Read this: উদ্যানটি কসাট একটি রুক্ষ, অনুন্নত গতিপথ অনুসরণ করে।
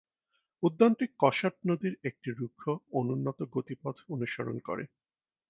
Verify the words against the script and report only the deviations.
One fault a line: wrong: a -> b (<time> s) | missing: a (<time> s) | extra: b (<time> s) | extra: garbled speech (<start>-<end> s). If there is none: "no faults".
extra: নদীর (1.7 s)